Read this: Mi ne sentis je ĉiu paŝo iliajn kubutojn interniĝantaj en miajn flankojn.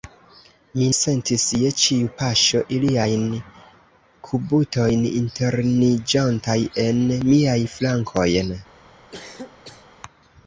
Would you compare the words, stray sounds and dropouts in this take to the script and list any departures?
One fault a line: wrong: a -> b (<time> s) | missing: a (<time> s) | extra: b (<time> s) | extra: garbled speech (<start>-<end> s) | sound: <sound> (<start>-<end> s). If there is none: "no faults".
missing: ne (0.8 s)
sound: cough (9.1-9.9 s)